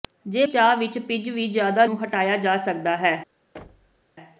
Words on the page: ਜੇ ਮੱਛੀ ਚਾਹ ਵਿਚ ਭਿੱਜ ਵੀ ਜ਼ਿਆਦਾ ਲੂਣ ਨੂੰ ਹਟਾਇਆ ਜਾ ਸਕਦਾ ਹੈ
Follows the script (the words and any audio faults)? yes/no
no